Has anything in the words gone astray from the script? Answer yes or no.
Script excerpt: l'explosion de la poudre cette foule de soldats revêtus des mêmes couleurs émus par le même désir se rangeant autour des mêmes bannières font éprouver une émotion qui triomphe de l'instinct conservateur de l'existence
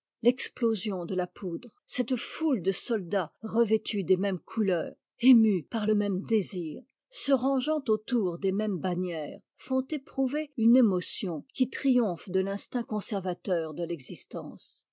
no